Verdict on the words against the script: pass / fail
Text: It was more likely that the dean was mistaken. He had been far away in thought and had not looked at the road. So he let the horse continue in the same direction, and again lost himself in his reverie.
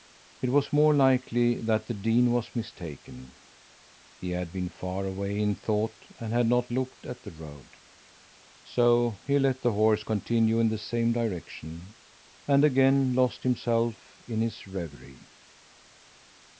pass